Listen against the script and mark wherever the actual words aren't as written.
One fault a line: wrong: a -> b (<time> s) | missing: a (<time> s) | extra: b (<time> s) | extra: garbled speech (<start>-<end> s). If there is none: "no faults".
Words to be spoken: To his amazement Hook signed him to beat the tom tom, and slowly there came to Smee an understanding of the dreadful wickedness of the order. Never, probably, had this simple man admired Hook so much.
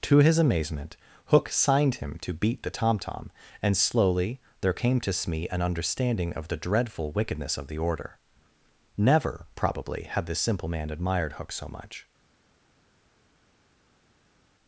no faults